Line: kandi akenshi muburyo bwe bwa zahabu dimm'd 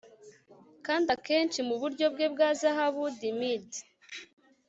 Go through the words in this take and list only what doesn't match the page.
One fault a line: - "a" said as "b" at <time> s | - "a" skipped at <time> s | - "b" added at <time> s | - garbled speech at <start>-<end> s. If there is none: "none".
none